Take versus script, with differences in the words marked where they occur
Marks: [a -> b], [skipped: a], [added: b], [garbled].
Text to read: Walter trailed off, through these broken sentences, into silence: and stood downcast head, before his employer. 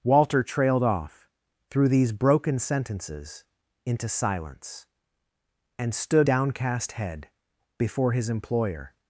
Walter trailed off, through these broken sentences, into silence: and stood downcast head, before his employer.